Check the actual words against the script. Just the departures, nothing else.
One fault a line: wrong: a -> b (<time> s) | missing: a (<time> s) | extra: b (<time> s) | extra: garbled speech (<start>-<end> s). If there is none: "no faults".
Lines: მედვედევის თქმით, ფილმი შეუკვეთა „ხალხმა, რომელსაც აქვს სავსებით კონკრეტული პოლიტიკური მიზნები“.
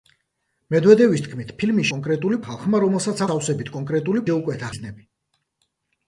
wrong: შეუკვეთა -> კონკრეტული (2.0 s)
missing: აქვს (3.3 s)
wrong: პოლიტიკური -> შეუკვეთა (4.3 s)